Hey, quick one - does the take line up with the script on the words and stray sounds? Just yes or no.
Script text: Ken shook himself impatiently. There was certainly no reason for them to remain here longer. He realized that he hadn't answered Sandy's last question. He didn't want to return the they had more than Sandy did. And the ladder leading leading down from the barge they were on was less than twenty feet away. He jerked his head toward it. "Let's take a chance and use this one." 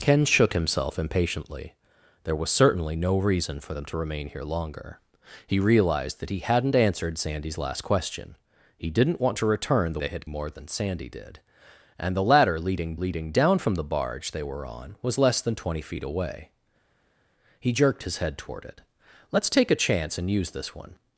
yes